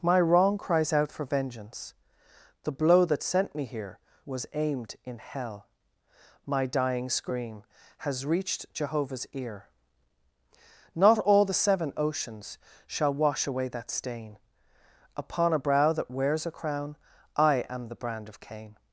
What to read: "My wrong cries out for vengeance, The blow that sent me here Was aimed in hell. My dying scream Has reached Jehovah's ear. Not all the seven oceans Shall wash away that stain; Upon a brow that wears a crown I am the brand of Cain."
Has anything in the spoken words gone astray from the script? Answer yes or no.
no